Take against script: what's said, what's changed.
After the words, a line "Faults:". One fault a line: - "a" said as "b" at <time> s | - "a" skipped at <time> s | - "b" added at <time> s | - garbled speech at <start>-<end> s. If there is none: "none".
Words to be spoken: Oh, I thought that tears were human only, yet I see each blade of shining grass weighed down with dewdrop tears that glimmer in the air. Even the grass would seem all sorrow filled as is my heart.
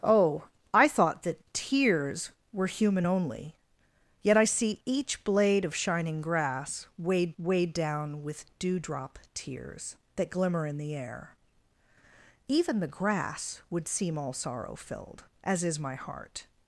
Oh, I thought that tears were human only, yet I see each blade of shining grass weighed weighed down with dewdrop tears that glimmer in the air. Even the grass would seem all sorrow filled as is my heart.
Faults:
- "weighed" added at 7.4 s